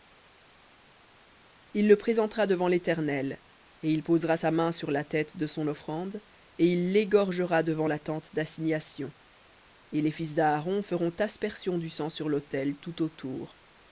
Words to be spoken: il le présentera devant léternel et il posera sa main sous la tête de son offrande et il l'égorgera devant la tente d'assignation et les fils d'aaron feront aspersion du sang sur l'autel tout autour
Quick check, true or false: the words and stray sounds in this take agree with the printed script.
false